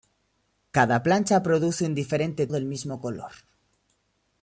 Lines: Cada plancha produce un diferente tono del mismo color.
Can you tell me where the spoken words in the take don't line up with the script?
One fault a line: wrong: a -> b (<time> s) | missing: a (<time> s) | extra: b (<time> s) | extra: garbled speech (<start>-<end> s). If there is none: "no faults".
missing: tono (2.5 s)